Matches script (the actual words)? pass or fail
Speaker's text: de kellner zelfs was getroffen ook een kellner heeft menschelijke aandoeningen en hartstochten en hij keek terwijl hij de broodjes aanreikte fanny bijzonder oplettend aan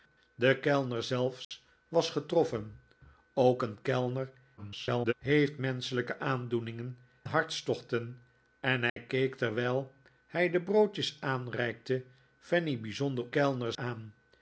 fail